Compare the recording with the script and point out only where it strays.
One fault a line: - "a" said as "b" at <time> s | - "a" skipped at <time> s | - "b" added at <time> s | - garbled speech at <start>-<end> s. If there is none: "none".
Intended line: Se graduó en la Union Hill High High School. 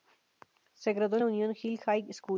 - "High" skipped at 2.1 s